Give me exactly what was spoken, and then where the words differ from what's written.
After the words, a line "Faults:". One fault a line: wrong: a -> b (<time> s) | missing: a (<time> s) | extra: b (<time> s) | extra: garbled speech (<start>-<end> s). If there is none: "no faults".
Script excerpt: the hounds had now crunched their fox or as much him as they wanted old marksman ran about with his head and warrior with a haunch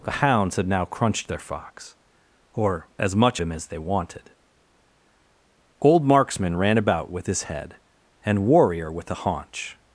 the hounds had now crunched their fox or as much him as they wanted old marksman ran about with his head and warrior with a haunch
Faults:
no faults